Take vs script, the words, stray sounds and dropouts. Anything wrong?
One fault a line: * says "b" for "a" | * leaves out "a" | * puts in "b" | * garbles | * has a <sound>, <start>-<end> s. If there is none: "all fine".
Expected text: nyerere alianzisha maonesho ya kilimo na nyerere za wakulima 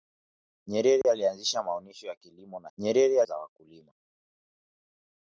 * has a dropout, 1.0-1.0 s